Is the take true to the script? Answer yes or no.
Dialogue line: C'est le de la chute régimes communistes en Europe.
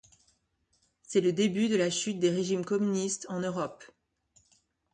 no